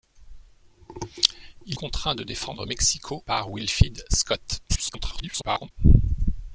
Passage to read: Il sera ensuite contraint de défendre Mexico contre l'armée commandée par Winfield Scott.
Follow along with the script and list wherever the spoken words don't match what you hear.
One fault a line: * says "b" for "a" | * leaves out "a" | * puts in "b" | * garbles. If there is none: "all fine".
* leaves out "sera ensuite"
* leaves out "contre l'armée commandée"
* garbles